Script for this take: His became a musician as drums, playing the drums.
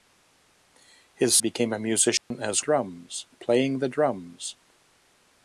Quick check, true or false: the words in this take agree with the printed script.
true